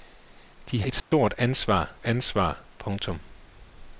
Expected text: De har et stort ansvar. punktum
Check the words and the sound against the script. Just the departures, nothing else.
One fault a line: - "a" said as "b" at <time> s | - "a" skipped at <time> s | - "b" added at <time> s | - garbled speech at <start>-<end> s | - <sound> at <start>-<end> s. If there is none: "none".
- "har" skipped at 0.8 s
- dropout at 1.0-1.1 s
- "ansvar" added at 2.0 s